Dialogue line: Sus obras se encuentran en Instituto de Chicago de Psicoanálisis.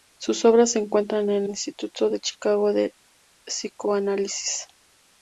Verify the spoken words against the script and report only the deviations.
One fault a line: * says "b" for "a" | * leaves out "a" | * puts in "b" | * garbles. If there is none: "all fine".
all fine